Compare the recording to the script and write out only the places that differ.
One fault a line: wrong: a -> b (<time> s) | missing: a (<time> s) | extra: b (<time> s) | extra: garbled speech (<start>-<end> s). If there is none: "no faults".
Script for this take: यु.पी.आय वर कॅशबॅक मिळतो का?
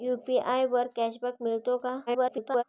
extra: garbled speech (2.1-2.6 s)